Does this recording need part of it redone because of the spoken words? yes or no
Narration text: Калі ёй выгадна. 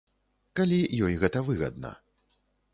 yes